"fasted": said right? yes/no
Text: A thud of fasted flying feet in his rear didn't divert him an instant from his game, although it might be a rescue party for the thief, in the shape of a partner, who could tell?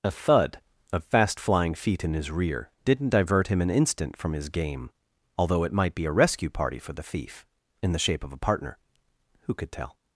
no